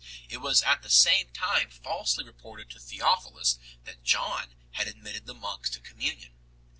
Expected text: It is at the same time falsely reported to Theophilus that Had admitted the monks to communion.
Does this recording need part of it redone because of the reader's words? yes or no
yes